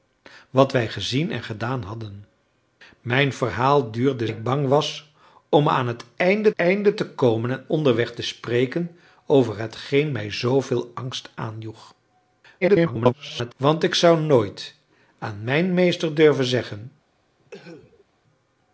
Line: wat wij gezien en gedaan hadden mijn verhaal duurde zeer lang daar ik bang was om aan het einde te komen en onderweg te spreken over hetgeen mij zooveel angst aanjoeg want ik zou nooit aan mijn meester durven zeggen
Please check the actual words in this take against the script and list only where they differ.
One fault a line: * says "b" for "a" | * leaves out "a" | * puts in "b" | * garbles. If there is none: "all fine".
* leaves out "zeer lang daar"
* puts in "einde"
* garbles